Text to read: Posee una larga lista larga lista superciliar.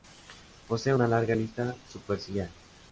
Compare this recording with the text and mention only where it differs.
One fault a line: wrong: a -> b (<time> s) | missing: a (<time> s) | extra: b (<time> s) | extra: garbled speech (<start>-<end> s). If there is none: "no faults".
missing: larga lista (1.8 s)